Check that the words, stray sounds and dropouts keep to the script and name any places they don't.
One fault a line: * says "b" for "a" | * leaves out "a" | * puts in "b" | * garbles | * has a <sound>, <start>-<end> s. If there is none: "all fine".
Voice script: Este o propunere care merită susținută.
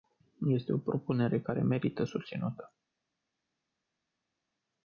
all fine